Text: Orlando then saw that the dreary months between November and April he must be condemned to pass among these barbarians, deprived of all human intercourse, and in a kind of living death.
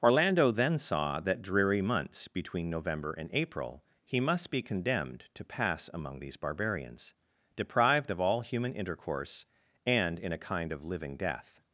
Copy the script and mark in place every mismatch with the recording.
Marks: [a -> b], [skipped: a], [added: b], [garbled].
Orlando then saw that [skipped: the] dreary months between November and April he must be condemned to pass among these barbarians, deprived of all human intercourse, and in a kind of living death.